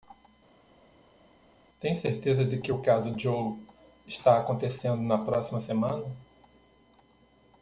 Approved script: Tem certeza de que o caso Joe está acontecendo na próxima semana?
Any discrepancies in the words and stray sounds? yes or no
no